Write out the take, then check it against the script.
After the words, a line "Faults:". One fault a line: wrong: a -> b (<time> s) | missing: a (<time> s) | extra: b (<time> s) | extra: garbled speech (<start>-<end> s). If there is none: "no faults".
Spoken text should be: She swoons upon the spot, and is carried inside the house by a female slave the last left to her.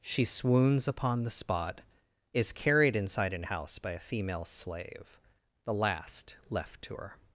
She swoons upon the spot, is carried inside an house by a female slave the last left to her.
Faults:
missing: and (1.8 s)
wrong: the -> an (3.3 s)